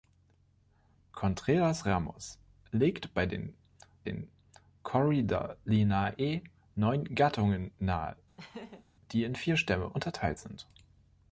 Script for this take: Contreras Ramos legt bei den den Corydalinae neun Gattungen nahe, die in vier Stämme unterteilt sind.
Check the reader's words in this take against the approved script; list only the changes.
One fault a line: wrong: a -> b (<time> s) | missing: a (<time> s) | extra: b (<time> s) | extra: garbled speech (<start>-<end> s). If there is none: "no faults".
no faults